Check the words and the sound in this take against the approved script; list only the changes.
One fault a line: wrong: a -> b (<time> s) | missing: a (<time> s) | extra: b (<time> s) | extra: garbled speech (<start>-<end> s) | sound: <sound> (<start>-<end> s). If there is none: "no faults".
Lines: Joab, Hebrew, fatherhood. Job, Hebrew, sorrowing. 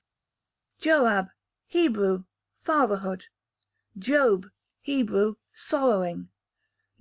no faults